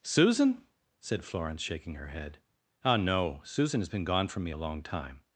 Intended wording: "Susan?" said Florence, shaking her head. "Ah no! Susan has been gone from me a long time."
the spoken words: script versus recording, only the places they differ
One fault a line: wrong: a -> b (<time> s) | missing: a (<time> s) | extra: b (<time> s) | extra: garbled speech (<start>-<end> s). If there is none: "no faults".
no faults